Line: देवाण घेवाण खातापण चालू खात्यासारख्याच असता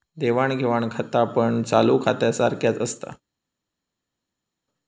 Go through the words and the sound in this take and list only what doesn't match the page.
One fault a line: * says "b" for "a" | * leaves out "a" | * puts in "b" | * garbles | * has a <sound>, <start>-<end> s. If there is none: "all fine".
all fine